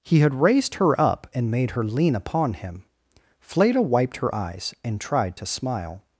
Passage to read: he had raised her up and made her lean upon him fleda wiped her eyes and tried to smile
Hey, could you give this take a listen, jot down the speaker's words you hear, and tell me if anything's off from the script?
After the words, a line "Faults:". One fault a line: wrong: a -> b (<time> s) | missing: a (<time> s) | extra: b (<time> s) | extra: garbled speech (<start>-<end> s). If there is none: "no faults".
he had raised her up and made her lean upon him fleda wiped her eyes and tried to smile
Faults:
no faults